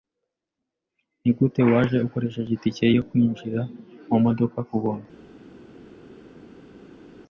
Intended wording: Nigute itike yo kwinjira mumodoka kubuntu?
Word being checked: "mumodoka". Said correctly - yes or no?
yes